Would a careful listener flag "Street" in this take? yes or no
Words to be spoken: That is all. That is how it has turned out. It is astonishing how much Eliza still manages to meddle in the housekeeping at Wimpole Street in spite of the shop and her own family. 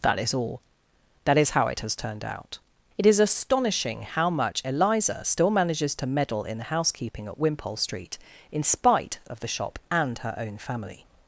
no